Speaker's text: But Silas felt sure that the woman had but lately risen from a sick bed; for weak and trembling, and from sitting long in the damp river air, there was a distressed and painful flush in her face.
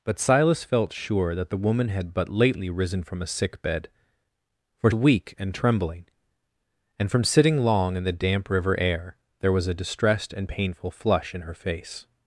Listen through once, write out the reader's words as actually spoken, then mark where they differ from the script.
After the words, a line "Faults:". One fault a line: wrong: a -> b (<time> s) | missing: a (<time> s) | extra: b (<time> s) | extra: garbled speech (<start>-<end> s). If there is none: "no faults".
But Silas felt sure that the woman had but lately risen from a sick bed; for weak and trembling, and from sitting long in the damp river air, there was a distressed and painful flush in her face.
Faults:
no faults